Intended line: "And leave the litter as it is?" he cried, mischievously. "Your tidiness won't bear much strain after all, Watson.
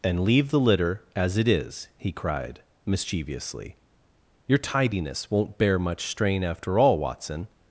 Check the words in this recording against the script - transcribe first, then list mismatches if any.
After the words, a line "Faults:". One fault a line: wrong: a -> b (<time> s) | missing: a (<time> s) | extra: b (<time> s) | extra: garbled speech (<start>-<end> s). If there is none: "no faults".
"And leave the litter as it is?" he cried, mischievously. "Your tidiness won't bear much strain after all, Watson.
Faults:
no faults